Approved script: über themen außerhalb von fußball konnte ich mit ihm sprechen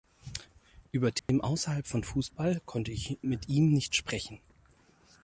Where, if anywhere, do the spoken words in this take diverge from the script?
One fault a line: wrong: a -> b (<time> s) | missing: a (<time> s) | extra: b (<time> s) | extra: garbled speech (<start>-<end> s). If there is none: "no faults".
extra: nicht (3.7 s)